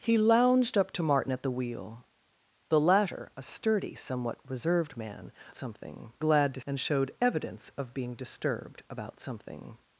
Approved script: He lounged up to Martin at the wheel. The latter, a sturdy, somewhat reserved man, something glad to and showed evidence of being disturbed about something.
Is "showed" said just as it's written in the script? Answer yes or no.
yes